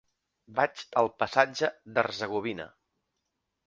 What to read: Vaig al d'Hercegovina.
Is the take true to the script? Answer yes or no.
no